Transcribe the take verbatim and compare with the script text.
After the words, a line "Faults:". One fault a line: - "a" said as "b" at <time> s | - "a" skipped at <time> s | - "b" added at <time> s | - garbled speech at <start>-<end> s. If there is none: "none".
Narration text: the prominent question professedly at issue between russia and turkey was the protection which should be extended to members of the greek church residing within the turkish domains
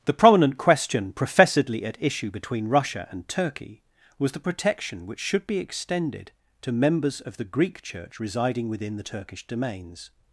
the prominent question professedly at issue between russia and turkey was the protection which should be extended to members of the greek church residing within the turkish domains
Faults:
none